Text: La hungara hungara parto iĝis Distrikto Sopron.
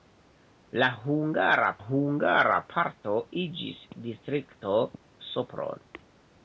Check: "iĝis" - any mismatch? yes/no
no